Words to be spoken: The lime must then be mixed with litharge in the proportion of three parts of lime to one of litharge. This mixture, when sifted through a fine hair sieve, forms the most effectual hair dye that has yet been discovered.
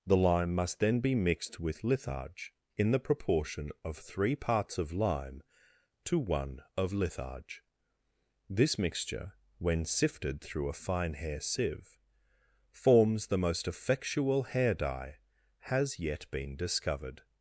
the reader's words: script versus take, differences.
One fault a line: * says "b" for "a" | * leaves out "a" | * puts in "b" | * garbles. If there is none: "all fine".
* leaves out "that"